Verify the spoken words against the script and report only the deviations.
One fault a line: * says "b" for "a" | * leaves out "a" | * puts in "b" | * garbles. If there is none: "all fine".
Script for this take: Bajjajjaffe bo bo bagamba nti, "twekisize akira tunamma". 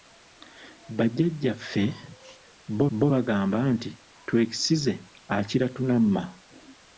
all fine